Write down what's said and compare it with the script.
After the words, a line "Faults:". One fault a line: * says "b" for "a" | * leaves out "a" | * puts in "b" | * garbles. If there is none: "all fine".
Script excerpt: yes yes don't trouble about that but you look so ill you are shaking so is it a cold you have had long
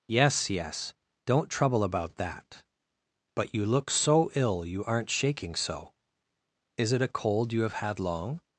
yes yes don't trouble about that but you look so ill you aren't shaking so is it a cold you have had long
Faults:
* says "aren't" for "are"